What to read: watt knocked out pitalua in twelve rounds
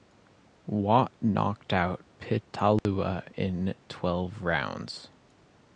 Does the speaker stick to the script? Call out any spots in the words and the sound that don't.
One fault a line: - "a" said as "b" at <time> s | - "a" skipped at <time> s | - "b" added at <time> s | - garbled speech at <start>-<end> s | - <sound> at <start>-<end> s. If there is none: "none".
- dropout at 2.8-2.9 s